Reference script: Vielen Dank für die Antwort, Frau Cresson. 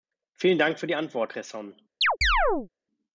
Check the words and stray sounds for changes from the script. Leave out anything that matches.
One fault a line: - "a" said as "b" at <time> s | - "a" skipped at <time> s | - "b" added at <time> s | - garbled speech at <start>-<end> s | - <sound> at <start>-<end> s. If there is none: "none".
- "Frau" skipped at 1.3 s
- chirp at 2.0-2.7 s